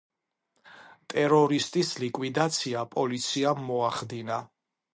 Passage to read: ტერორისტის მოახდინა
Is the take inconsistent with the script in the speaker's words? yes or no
yes